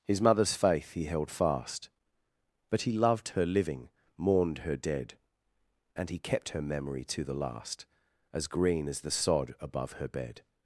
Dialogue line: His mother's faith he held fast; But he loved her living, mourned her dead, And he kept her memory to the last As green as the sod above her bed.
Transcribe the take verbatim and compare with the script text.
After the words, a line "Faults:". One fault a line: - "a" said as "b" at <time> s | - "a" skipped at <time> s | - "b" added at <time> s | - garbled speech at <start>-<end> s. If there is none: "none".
His mother's faith he held fast; But he loved her living, mourned her dead, And he kept her memory to the last As green as the sod above her bed.
Faults:
none